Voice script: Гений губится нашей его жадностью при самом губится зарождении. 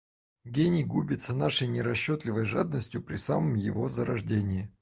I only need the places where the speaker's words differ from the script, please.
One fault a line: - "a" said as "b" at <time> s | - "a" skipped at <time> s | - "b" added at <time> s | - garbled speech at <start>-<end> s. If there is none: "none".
- "его" said as "нерасчетливой" at 1.7 s
- "губится" said as "его" at 3.5 s